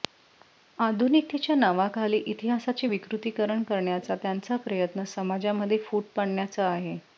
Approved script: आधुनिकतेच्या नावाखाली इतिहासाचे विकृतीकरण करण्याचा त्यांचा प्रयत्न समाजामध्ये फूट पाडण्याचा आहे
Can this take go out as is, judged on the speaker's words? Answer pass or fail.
pass